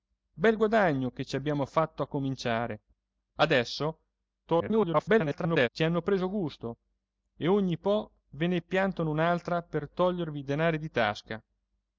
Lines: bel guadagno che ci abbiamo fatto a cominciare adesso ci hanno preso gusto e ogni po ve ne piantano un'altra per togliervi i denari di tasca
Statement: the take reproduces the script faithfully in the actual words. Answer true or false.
false